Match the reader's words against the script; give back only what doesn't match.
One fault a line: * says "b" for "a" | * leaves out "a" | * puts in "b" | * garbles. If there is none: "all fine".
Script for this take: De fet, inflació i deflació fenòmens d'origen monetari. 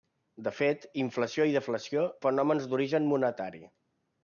all fine